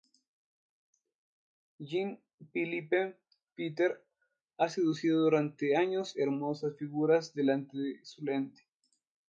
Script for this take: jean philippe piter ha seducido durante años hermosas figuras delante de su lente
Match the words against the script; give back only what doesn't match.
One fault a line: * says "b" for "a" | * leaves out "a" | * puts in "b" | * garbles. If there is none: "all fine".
all fine